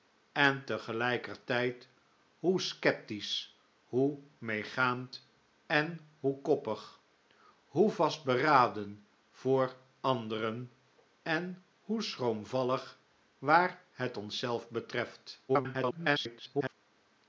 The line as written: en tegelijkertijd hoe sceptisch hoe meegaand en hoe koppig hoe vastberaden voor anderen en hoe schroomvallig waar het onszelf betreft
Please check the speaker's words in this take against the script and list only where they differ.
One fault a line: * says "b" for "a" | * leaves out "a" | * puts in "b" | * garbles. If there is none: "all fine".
* garbles